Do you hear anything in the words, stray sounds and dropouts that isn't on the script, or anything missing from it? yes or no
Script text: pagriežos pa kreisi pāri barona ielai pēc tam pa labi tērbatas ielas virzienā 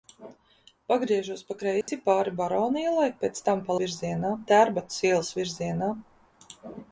yes